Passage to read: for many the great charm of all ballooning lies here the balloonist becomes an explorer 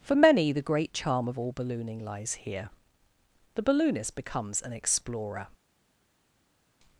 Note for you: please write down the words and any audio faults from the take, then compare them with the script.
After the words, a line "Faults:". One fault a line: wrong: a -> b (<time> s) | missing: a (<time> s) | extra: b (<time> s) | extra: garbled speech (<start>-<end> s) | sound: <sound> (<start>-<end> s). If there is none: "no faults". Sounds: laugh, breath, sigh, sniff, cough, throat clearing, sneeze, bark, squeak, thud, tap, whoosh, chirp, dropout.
for many the great charm of all ballooning lies here the balloonist becomes an explorer
Faults:
no faults